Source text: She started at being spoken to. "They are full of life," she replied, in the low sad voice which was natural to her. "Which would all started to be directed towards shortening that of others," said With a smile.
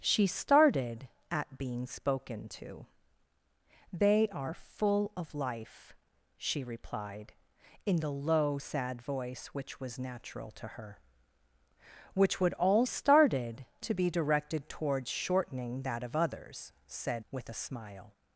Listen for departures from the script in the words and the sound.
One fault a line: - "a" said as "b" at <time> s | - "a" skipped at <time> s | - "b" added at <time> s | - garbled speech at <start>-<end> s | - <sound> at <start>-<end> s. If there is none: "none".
none